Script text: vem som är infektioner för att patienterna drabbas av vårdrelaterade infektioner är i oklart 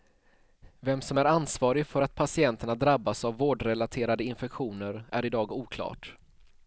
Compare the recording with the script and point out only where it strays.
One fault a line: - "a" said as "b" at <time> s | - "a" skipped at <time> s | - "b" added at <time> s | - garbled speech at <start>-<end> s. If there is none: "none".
- "infektioner" said as "ansvarig" at 1.2 s
- "dag" added at 5.3 s